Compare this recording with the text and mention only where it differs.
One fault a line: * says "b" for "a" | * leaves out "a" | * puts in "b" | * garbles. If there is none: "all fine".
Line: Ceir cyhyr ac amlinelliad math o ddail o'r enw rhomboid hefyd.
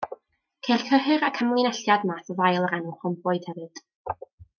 all fine